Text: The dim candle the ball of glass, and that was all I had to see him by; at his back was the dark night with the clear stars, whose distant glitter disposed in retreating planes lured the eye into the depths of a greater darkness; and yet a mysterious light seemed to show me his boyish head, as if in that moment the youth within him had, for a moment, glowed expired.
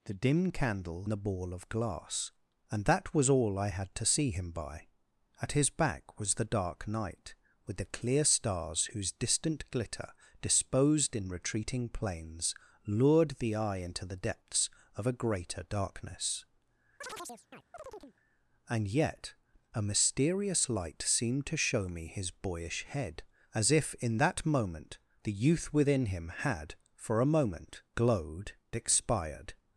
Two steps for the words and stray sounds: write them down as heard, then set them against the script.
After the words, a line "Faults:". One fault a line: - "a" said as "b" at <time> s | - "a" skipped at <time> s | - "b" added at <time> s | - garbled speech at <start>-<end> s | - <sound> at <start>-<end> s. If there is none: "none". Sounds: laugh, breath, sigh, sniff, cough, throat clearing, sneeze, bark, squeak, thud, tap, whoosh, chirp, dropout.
The dim candle the ball of glass, and that was all I had to see him by; at his back was the dark night with the clear stars, whose distant glitter disposed in retreating planes lured the eye into the depths of a greater darkness; and yet a mysterious light seemed to show me his boyish head, as if in that moment the youth within him had, for a moment, glowed expired.
Faults:
- chirp at 17.0-18.2 s